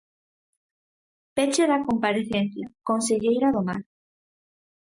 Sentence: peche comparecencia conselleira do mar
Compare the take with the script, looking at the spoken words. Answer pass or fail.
fail